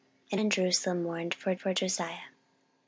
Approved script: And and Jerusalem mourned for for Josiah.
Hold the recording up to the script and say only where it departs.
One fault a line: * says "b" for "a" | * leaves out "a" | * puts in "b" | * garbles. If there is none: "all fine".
all fine